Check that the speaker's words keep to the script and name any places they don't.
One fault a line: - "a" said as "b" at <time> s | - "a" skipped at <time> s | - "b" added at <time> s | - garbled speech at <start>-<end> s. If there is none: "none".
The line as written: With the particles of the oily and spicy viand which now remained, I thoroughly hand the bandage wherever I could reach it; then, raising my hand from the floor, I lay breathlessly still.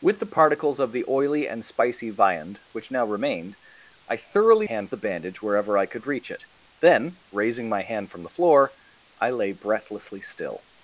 none